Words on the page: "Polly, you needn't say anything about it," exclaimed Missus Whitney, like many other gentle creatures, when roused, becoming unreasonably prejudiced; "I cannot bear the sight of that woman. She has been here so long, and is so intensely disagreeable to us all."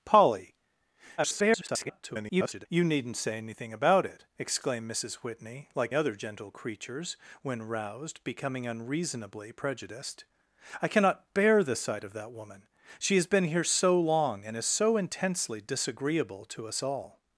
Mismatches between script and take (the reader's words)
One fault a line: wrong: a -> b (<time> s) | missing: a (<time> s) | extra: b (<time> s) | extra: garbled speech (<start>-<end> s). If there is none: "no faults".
extra: garbled speech (1.2-2.7 s)
missing: many (5.9 s)